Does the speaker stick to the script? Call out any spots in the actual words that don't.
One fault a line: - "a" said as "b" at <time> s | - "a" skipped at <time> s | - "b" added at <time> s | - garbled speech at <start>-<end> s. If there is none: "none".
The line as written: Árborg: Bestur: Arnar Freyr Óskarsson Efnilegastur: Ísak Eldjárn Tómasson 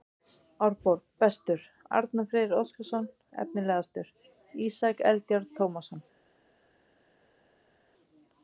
none